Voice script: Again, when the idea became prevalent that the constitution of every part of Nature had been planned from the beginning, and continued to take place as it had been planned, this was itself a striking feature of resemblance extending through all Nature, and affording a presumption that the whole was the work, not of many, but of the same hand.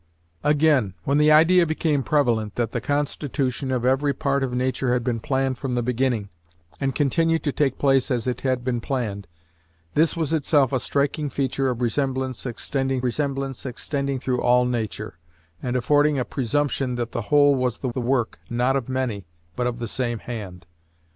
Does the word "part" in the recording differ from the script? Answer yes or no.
no